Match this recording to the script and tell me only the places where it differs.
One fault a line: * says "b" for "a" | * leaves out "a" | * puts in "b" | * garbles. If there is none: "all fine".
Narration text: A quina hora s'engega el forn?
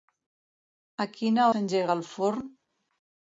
* leaves out "hora"